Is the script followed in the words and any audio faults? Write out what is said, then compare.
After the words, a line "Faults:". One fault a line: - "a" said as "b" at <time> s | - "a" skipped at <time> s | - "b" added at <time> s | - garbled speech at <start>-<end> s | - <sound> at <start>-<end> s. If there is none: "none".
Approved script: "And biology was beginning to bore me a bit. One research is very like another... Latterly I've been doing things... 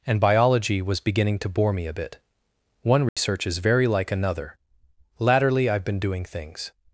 "And biology was beginning to bore me a bit. One research is very like another... Latterly I've been doing things...
Faults:
- dropout at 3.1-3.2 s